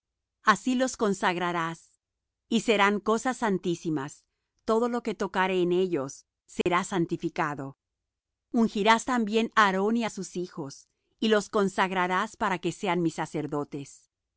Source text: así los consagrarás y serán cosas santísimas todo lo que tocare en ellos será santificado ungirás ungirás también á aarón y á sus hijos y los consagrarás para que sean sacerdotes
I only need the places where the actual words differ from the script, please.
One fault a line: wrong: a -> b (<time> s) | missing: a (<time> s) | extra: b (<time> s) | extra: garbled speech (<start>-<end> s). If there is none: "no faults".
missing: ungirás (9.1 s)
extra: mis (13.0 s)